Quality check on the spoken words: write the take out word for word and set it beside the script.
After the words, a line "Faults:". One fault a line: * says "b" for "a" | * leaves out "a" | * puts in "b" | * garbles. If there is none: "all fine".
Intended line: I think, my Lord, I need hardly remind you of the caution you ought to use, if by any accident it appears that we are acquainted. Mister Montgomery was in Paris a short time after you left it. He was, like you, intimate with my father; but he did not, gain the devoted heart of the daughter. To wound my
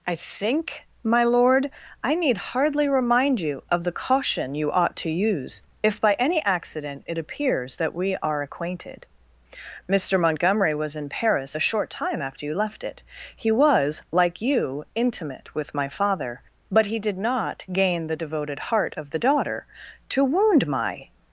I think, my Lord, I need hardly remind you of the caution you ought to use, if by any accident it appears that we are acquainted. Mister Montgomery was in Paris a short time after you left it. He was, like you, intimate with my father; but he did not, gain the devoted heart of the daughter. To wound my
Faults:
all fine